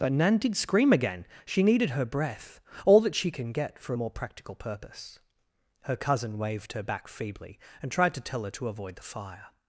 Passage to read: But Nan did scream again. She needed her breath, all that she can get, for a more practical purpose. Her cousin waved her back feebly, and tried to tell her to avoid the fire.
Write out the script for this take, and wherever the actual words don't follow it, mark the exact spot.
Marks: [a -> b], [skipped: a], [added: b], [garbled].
But Nan did scream again. She needed her breath, all that she can get, for a more practical purpose. Her cousin waved her back feebly, and tried to tell her to avoid the fire.